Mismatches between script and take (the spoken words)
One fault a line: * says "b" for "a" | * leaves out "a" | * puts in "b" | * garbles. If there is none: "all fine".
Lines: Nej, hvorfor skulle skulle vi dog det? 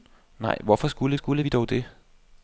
all fine